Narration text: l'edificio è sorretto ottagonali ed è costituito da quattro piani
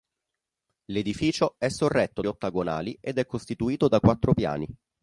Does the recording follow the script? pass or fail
pass